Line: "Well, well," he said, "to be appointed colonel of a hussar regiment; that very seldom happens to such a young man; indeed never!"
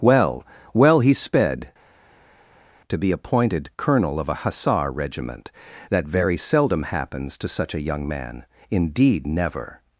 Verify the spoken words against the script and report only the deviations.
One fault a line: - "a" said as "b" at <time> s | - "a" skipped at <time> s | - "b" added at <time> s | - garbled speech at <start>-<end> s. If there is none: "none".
- "said" said as "sped" at 1.1 s